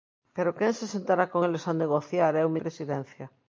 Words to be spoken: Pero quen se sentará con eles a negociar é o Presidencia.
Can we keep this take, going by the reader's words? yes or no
yes